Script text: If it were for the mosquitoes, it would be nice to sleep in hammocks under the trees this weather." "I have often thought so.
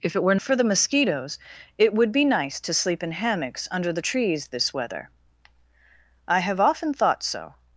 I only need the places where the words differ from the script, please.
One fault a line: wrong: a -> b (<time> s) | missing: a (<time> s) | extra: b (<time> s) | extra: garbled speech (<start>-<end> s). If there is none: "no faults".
no faults